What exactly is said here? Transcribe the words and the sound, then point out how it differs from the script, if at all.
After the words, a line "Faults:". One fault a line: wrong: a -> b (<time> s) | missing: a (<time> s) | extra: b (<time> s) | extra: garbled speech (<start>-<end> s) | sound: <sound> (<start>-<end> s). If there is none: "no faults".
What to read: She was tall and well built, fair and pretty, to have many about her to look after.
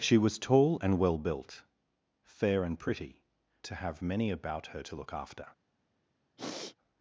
She was tall and well built, fair and pretty, to have many about her to look after.
Faults:
sound: sniff (6.4-6.8 s)